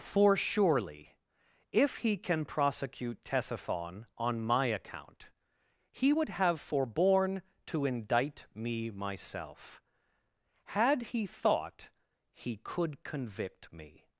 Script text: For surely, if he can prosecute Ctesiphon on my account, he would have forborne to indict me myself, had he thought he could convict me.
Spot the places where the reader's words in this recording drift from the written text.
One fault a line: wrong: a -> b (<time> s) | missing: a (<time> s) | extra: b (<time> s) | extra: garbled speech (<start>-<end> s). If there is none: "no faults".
no faults